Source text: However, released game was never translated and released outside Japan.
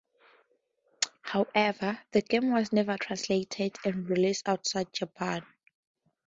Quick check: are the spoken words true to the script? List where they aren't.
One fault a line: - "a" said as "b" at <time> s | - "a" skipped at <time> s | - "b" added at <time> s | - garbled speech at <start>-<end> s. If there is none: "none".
- "released" said as "the" at 2.1 s